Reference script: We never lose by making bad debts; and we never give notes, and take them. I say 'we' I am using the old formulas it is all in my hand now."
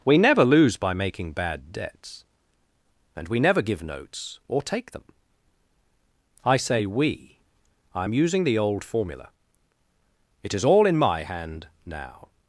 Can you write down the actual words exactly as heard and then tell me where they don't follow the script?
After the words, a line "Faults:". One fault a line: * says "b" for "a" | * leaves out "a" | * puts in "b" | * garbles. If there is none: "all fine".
We never lose by making bad debts; and we never give notes, or take them. I say 'we' I am using the old formula it is all in my hand now."
Faults:
* says "or" for "and"
* says "formula" for "formulas"